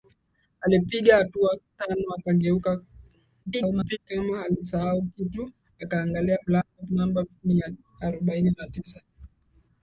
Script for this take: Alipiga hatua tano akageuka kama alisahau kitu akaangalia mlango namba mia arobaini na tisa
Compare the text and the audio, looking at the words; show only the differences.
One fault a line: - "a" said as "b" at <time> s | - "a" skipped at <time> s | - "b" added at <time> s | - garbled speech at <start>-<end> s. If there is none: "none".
- garbled speech at 3.5-4.0 s